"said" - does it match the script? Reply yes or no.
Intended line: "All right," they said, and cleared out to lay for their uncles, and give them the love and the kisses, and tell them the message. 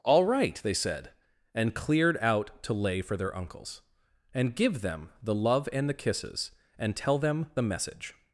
yes